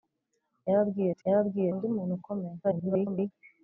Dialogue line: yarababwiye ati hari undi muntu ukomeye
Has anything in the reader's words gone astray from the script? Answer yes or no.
yes